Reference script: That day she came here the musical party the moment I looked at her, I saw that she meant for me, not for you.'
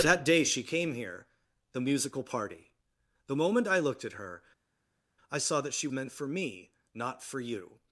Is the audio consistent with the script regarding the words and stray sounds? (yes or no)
yes